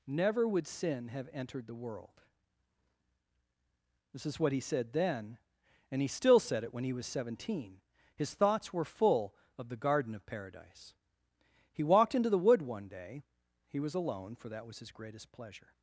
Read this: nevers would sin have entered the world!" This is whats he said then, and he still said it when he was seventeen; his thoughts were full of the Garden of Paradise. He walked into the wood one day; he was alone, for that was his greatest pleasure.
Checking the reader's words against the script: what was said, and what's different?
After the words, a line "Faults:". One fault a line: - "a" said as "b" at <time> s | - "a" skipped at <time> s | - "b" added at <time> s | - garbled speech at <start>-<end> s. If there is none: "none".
never would sin have entered the world!" This is what he said then, and he still said it when he was seventeen; his thoughts were full of the Garden of Paradise. He walked into the wood one day; he was alone, for that was his greatest pleasure.
Faults:
- "nevers" said as "never" at 0.1 s
- "whats" said as "what" at 4.4 s